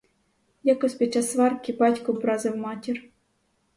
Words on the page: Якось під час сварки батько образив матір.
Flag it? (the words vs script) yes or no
no